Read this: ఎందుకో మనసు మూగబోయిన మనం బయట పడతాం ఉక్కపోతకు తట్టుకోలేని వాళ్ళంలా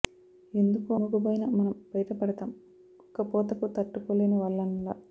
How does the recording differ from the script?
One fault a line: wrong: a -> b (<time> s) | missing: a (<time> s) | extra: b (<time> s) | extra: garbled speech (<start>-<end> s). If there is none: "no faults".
missing: మనసు (0.9 s)